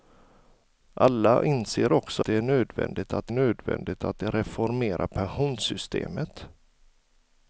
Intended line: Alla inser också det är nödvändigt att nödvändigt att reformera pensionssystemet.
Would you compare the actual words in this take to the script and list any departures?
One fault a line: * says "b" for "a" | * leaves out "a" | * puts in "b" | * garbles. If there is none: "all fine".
all fine